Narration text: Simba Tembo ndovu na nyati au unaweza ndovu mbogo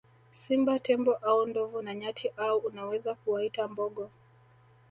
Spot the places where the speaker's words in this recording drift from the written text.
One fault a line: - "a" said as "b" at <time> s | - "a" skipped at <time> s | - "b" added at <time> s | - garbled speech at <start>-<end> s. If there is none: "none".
- "au" added at 1.1 s
- "ndovu" said as "kuwaita" at 3.1 s